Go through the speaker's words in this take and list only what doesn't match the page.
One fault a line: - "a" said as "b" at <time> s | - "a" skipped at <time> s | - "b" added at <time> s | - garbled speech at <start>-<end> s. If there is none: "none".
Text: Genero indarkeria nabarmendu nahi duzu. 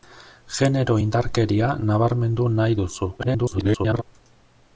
- garbled speech at 3.2-4.0 s